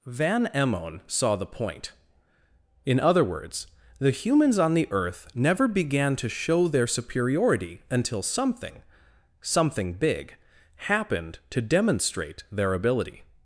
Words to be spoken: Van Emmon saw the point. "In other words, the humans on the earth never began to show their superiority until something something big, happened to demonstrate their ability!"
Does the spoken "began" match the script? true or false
true